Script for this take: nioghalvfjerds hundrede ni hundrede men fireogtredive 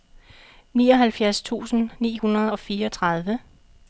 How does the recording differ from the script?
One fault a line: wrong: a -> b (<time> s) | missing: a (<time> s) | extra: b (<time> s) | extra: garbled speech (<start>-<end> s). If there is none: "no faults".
wrong: hundrede -> tusind (1.4 s)
wrong: men -> og (2.5 s)